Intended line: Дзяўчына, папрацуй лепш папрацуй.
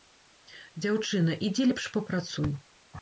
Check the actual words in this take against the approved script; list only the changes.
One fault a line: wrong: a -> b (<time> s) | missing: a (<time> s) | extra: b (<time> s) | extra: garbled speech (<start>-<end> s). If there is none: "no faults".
wrong: папрацуй -> ідзі (1.5 s)